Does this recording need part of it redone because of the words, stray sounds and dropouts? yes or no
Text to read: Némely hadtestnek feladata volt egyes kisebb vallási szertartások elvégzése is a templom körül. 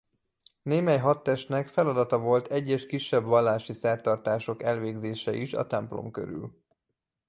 no